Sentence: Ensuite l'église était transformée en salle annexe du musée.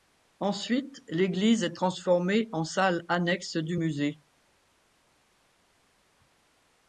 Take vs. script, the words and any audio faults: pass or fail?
fail